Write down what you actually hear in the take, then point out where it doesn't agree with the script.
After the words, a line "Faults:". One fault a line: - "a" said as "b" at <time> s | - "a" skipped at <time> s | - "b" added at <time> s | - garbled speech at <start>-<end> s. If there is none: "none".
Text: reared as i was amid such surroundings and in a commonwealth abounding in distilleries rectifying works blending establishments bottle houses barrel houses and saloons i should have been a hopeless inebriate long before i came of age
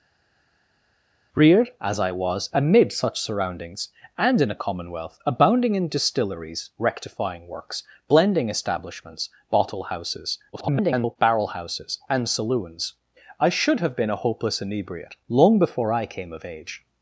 reared as i was amid such surroundings and in a commonwealth abounding in distilleries rectifying works blending establishments bottle houses [garbled] barrel houses and saloons i should have been a hopeless inebriate long before i came of age
Faults:
- garbled speech at 10.5-11.2 s